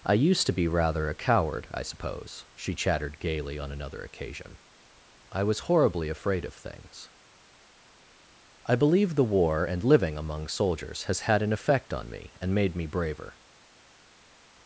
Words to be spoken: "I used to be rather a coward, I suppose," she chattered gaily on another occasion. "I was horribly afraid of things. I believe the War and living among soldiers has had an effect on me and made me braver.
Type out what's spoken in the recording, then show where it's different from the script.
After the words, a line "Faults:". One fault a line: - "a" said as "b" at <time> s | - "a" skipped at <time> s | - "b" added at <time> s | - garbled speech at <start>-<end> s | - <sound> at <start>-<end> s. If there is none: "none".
"I used to be rather a coward, I suppose," she chattered gaily on another occasion. "I was horribly afraid of things. I believe the War and living among soldiers has had an effect on me and made me braver.
Faults:
none